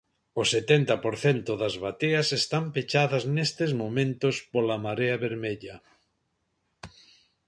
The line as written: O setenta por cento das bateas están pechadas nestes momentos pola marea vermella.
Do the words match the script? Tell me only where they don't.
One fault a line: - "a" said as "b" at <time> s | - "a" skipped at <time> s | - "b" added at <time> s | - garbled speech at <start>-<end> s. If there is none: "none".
none